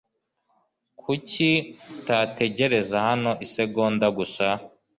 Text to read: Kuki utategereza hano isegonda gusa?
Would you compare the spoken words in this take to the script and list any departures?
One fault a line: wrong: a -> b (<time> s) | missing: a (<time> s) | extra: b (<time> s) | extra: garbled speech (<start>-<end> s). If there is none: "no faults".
no faults